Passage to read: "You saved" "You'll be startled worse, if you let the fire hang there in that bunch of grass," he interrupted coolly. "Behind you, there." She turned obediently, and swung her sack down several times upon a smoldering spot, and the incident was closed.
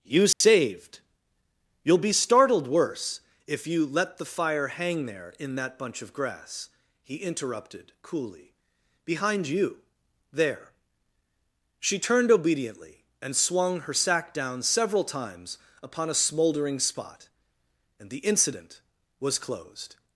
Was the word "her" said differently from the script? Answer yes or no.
no